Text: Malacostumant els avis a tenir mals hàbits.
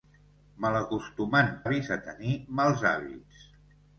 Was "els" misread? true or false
true